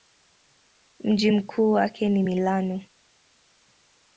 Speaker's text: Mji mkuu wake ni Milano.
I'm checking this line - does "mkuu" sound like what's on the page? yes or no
yes